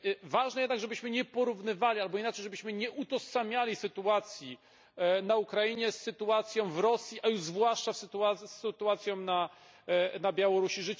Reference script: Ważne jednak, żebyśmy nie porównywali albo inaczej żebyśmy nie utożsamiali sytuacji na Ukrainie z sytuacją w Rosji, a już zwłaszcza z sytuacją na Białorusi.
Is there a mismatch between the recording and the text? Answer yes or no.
no